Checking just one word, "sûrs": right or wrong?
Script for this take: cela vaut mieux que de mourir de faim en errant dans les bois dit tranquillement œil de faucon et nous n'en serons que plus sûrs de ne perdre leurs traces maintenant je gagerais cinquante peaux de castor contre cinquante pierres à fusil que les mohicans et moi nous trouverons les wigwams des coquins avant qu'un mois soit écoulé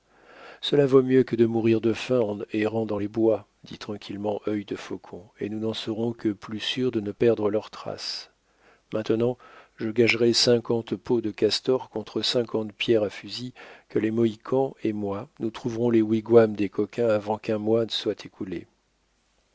right